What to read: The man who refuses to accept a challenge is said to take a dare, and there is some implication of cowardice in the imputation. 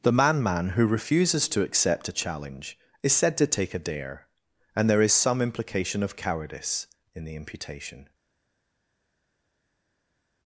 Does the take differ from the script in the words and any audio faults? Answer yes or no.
yes